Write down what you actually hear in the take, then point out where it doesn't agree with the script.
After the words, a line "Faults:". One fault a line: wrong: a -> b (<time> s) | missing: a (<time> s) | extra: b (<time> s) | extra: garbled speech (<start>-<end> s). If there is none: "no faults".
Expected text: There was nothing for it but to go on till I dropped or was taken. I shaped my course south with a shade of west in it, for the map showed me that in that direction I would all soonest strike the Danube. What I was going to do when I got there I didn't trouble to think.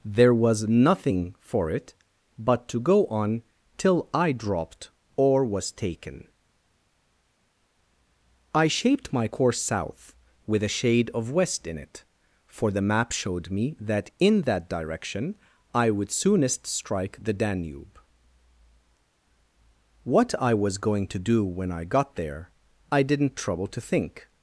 There was nothing for it but to go on till I dropped or was taken. I shaped my course south with a shade of west in it, for the map showed me that in that direction I would soonest strike the Danube. What I was going to do when I got there I didn't trouble to think.
Faults:
missing: all (16.1 s)